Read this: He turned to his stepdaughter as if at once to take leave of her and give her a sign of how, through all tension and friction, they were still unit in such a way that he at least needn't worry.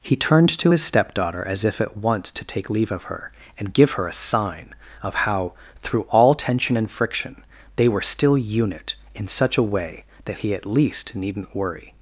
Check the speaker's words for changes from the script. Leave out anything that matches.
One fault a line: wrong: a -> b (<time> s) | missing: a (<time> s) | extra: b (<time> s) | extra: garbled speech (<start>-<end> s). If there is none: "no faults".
no faults